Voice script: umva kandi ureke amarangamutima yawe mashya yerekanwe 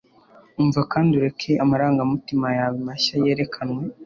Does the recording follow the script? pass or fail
pass